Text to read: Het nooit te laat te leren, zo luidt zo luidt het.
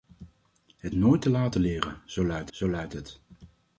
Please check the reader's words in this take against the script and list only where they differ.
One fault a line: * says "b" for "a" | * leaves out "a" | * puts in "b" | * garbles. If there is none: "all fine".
all fine